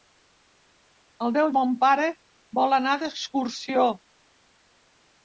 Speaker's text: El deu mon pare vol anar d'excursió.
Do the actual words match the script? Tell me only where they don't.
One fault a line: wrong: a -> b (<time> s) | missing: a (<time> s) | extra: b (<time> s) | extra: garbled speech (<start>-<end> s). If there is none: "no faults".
no faults